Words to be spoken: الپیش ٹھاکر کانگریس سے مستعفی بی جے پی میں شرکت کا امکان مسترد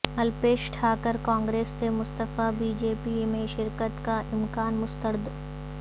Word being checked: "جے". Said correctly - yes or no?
yes